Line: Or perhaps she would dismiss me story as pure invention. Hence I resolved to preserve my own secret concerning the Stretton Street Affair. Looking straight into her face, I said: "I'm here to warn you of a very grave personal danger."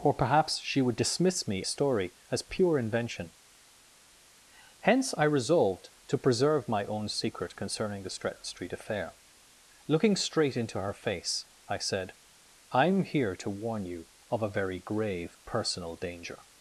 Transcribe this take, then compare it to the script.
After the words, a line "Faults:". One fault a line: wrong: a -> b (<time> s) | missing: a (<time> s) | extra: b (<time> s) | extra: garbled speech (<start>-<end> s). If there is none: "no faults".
Or perhaps she would dismiss me story as pure invention. Hence I resolved to preserve my own secret concerning the Stretton Street Affair. Looking straight into her face, I said: "I'm here to warn you of a very grave personal danger."
Faults:
no faults